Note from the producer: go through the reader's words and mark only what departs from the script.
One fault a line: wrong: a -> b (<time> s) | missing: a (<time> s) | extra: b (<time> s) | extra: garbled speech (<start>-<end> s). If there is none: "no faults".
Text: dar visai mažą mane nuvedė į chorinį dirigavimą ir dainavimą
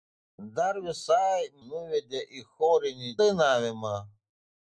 missing: mažą mane (1.4 s)
missing: dirigavimą ir (3.1 s)